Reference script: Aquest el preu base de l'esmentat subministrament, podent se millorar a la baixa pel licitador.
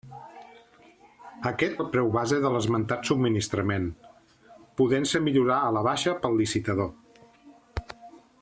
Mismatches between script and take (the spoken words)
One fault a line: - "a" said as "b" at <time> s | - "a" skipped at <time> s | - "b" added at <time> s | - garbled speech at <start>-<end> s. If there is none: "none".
none